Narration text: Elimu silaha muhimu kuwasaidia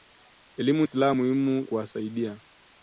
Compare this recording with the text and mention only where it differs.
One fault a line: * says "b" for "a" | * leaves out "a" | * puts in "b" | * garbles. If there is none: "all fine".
all fine